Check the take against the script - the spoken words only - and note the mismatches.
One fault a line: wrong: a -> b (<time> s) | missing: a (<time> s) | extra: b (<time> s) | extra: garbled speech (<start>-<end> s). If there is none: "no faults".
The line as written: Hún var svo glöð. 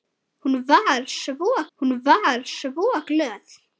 extra: hún var svo (1.8 s)